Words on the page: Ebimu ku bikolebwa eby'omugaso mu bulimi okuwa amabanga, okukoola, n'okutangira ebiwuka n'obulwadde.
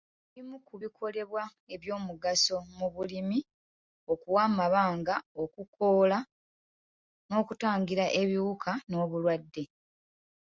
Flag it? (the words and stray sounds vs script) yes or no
no